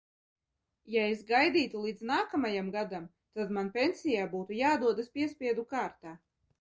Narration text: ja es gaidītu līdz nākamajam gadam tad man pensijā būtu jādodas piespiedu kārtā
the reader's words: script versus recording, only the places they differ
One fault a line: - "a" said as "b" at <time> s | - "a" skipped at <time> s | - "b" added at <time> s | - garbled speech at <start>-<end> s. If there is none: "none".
none